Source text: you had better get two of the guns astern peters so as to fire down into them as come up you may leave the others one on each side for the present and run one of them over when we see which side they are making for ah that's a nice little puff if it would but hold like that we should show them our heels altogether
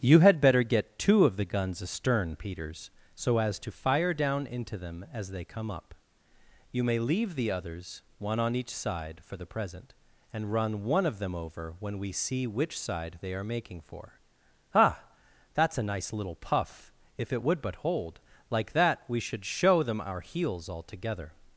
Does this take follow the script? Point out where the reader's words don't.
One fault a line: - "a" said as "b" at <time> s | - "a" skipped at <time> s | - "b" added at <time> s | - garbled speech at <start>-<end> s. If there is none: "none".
- "they" added at 5.3 s